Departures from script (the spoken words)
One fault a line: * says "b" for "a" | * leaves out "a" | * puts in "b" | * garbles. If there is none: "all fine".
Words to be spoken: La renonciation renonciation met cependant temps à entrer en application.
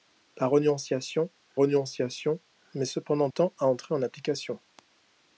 all fine